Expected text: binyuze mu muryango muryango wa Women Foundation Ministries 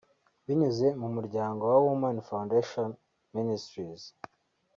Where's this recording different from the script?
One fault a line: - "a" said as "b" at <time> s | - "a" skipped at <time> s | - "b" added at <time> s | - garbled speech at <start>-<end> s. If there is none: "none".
- "muryango" skipped at 1.6 s